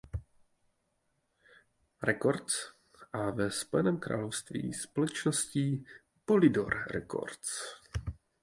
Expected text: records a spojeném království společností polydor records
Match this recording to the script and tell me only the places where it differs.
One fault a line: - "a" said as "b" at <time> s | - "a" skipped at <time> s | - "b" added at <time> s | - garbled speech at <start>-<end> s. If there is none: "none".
- "ve" added at 3.3 s